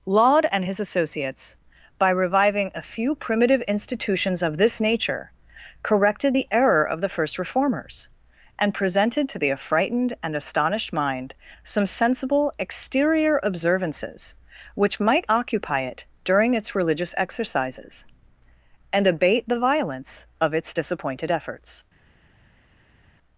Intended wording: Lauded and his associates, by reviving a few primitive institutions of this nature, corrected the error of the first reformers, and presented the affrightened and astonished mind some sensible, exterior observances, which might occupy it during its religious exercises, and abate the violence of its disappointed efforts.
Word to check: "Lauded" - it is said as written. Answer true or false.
false